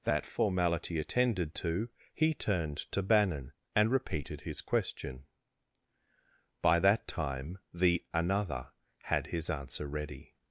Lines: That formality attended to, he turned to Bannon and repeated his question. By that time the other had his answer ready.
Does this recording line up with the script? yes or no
no